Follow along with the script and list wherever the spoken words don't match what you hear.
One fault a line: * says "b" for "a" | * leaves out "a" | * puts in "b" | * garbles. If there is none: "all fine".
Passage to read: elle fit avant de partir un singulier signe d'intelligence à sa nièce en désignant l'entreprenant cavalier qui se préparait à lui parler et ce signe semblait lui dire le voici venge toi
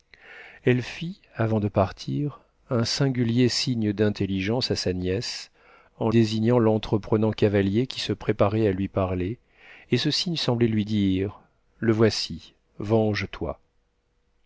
all fine